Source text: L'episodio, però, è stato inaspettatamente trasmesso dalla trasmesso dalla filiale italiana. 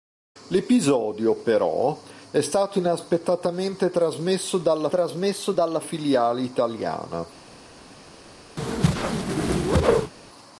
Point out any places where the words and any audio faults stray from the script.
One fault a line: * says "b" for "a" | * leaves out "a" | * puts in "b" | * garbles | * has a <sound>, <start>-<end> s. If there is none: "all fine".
* has a whoosh, 8.6-10.1 s